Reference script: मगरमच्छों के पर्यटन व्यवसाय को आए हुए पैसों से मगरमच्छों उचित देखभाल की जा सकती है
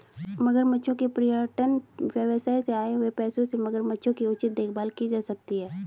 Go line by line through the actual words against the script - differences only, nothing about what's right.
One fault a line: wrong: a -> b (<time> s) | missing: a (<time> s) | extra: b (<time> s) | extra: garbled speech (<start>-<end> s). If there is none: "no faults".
wrong: को -> से (2.6 s)
extra: की (4.1 s)